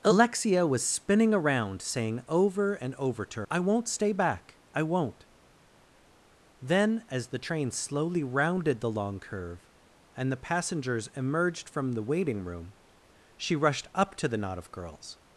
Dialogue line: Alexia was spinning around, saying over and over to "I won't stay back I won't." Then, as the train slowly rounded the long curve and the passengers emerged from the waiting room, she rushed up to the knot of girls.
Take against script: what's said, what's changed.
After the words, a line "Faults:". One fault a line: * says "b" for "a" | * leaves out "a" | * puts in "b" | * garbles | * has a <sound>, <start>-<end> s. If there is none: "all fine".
Alexia was spinning around, saying over and over to "I won't stay back I won't." Then, as the train slowly rounded the long curve and the passengers emerged from the waiting room, she rushed up to the knot of girls.
Faults:
all fine